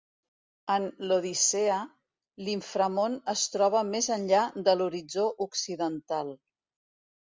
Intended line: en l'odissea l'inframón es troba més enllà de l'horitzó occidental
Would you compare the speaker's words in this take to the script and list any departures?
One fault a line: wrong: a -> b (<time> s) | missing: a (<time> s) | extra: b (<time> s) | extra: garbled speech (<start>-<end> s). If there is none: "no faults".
no faults